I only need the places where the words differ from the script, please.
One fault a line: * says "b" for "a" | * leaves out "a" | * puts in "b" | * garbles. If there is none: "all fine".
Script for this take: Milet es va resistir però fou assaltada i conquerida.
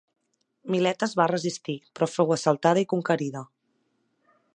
all fine